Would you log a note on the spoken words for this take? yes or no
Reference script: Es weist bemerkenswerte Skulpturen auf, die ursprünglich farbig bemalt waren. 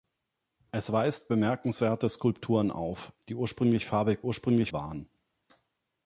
yes